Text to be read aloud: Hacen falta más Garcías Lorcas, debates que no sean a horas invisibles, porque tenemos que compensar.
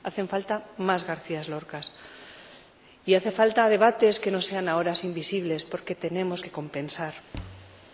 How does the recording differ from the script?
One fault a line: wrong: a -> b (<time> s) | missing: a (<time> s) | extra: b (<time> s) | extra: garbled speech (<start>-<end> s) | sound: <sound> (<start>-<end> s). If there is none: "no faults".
extra: y hacen falta (3.0 s)
sound: thud (7.3-7.9 s)